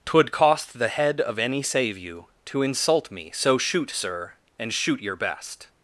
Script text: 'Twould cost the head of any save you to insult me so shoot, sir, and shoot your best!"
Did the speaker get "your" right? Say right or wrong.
right